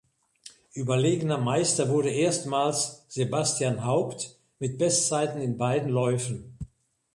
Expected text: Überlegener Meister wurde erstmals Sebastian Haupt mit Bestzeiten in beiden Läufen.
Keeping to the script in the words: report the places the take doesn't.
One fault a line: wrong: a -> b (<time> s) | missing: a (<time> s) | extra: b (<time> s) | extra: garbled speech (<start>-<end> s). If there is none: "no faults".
no faults